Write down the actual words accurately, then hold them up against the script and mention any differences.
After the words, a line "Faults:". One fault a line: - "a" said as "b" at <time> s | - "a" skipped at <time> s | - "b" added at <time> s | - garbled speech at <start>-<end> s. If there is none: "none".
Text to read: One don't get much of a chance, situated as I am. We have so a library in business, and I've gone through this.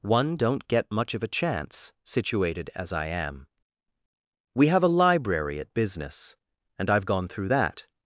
One don't get much of a chance, situated as I am. We have a library at business, and I've gone through that.
Faults:
- "so" skipped at 4.8 s
- "in" said as "at" at 5.6 s
- "this" said as "that" at 7.5 s